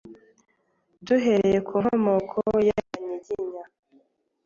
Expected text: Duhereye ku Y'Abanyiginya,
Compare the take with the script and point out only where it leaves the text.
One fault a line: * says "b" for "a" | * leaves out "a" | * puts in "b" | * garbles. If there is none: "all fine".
* puts in "Nkomoko"